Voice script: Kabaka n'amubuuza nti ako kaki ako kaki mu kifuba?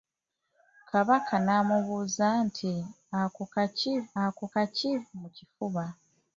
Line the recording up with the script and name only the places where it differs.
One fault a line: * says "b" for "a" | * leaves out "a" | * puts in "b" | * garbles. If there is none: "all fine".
all fine